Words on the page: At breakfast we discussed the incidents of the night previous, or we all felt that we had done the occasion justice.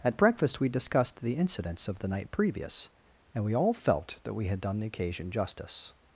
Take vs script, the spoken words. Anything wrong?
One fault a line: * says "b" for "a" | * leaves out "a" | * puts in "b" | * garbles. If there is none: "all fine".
* says "and" for "or"